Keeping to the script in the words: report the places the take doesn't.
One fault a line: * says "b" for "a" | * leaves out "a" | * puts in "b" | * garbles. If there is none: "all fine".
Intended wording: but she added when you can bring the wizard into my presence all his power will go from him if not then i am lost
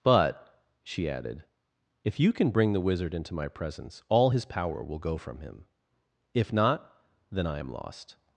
* says "if" for "when"